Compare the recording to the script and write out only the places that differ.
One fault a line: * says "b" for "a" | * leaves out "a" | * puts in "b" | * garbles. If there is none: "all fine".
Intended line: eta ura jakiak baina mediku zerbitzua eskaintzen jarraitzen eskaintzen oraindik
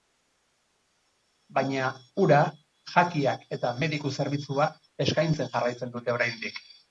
* says "baina" for "eta"
* says "eta" for "baina"
* says "dute" for "eskaintzen"